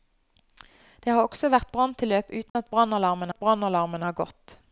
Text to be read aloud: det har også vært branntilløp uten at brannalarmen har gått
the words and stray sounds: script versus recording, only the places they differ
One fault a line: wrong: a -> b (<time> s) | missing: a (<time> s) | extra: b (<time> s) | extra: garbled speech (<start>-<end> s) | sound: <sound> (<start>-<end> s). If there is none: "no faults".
sound: dropout (2.5-2.6 s)
extra: at brannalarmen (3.3 s)